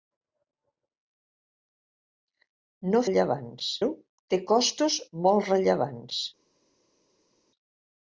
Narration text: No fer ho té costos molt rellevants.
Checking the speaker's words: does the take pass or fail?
fail